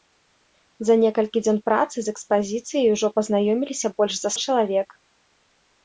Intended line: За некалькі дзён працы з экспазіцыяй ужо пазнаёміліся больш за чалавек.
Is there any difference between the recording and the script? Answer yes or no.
no